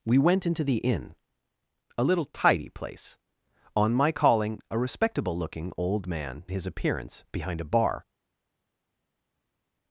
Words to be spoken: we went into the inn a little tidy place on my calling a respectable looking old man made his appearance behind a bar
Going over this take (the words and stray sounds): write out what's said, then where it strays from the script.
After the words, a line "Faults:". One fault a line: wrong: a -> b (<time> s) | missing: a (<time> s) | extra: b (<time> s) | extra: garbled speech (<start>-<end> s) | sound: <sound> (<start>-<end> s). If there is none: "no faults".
we went into the inn a little tidy place on my calling a respectable looking old man his appearance behind a bar
Faults:
missing: made (6.4 s)